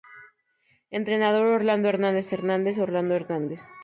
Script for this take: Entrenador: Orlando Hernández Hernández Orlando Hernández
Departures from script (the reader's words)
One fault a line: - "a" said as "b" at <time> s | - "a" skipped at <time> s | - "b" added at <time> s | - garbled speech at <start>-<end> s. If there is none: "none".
none